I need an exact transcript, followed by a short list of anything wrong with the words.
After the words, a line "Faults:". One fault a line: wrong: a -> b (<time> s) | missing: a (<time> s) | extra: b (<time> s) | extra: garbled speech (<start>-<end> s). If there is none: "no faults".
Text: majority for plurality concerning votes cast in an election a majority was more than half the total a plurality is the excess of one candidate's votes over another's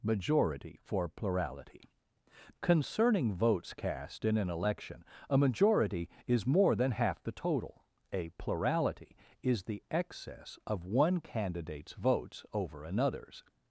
majority for plurality concerning votes cast in an election a majority is more than half the total a plurality is the excess of one candidate's votes over another's
Faults:
wrong: was -> is (6.2 s)